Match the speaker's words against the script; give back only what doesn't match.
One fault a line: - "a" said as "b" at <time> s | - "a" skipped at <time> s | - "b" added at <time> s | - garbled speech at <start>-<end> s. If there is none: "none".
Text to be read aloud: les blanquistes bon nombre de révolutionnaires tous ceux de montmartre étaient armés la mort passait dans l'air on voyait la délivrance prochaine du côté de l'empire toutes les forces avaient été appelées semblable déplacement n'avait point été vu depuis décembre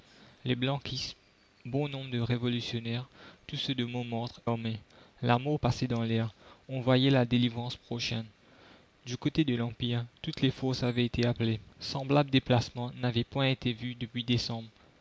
- "étaient" skipped at 4.4 s